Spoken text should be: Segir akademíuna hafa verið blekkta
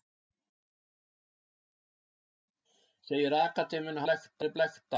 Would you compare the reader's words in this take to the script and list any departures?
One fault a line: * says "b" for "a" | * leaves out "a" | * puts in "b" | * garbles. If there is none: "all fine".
* says "blekkta" for "hafa"